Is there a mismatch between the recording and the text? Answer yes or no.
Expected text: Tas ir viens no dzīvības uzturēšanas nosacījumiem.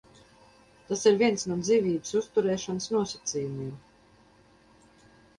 no